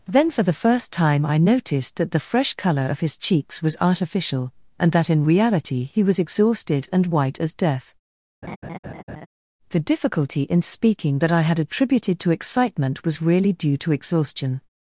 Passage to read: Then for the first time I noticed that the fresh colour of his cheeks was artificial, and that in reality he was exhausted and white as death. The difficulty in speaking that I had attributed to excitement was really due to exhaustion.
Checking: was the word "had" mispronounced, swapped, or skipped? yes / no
no